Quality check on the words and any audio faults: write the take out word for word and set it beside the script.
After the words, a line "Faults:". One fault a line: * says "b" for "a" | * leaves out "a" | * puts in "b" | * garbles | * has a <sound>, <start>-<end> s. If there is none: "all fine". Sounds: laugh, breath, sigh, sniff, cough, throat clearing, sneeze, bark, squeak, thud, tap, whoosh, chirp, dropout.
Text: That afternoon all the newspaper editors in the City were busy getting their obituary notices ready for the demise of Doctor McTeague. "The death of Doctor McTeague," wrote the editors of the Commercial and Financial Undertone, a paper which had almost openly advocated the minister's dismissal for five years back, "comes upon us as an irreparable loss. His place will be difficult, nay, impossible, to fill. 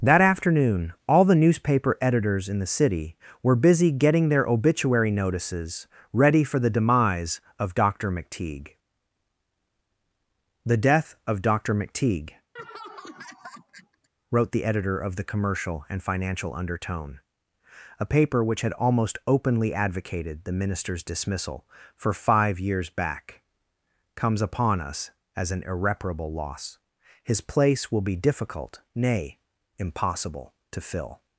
That afternoon all the newspaper editors in the City were busy getting their obituary notices ready for the demise of Doctor McTeague. "The death of Doctor McTeague," wrote the editor of the Commercial and Financial Undertone, a paper which had almost openly advocated the minister's dismissal for five years back, "comes upon us as an irreparable loss. His place will be difficult, nay, impossible, to fill.
Faults:
* has a laugh, 12.6-14.1 s
* says "editor" for "editors"